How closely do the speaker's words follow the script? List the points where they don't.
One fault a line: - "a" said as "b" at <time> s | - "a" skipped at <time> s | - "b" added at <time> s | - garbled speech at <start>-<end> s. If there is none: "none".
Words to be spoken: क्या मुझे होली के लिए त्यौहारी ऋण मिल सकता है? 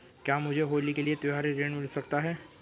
none